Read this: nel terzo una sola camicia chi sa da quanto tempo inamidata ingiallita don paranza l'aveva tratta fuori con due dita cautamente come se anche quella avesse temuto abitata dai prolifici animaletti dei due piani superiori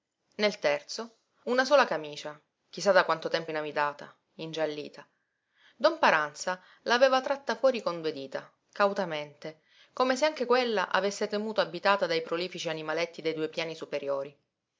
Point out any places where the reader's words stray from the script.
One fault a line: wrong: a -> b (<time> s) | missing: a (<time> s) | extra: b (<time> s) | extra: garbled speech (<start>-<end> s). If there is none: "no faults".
no faults